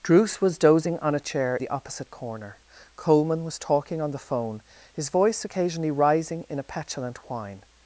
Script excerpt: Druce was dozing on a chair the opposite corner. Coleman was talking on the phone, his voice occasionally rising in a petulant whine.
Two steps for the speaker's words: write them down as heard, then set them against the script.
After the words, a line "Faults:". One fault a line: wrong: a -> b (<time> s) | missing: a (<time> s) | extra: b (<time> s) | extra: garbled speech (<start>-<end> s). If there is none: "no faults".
Druce was dozing on a chair the opposite corner. Coleman was talking on the phone, his voice occasionally rising in a petulant whine.
Faults:
no faults